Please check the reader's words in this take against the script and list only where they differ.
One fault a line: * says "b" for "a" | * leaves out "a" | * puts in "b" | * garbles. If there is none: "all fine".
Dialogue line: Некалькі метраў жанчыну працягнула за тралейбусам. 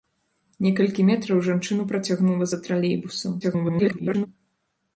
* garbles